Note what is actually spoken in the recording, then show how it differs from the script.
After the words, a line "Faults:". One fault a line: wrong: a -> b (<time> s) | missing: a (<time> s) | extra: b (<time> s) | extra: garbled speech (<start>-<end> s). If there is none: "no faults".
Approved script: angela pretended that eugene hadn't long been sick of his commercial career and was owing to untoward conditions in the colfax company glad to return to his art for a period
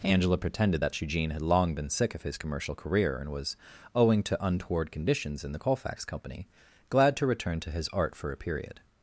angela pretended that eugene had long been sick of his commercial career and was owing to untoward conditions in the colfax company glad to return to his art for a period
Faults:
wrong: hadn't -> had (1.3 s)